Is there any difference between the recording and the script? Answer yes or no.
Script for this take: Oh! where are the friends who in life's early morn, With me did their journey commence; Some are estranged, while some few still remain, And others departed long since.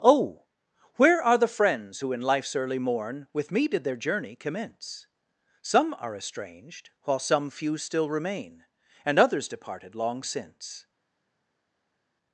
no